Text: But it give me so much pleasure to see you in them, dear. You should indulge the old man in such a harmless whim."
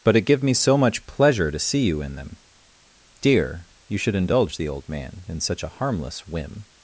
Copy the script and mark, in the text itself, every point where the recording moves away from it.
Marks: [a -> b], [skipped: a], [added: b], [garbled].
But it give me so much pleasure to see you in them, dear. You should indulge the old man in such a harmless whim."